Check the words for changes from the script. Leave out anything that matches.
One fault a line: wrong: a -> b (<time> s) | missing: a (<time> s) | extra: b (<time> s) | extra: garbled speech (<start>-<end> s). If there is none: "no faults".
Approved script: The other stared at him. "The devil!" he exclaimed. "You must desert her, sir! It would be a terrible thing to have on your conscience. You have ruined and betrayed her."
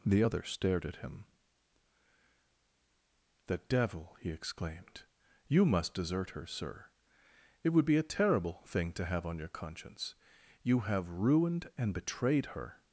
no faults